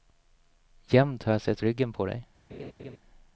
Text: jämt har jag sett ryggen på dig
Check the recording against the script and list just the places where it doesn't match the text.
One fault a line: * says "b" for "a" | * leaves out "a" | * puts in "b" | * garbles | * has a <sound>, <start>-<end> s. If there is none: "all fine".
* has a laugh, 2.5-3.0 s